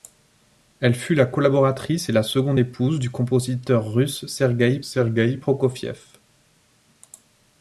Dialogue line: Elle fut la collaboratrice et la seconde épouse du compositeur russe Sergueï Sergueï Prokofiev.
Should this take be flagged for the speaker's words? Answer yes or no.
no